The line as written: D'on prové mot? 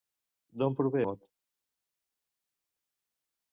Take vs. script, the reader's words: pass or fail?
pass